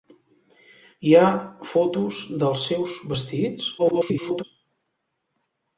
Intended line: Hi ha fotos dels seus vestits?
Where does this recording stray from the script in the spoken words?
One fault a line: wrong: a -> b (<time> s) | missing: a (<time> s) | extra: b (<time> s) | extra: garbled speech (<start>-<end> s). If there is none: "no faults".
extra: garbled speech (3.8-4.4 s)